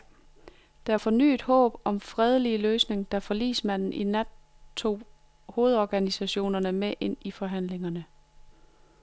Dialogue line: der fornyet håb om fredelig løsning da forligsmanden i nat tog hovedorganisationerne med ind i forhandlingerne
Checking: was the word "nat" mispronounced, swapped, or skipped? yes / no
no